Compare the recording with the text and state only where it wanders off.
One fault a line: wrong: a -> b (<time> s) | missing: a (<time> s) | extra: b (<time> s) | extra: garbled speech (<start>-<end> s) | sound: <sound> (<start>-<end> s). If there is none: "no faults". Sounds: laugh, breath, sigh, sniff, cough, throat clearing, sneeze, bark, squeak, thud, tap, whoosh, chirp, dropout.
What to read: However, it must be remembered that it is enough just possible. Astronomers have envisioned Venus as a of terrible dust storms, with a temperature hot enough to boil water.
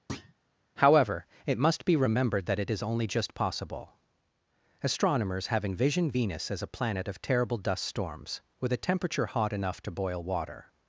sound: thud (0.1-0.3 s)
wrong: enough -> only (2.8 s)
extra: planet (6.7 s)